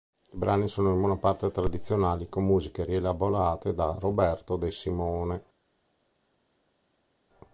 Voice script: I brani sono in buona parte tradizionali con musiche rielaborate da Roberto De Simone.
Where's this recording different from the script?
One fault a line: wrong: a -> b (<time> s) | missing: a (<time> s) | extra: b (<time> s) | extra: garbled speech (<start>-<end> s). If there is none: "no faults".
no faults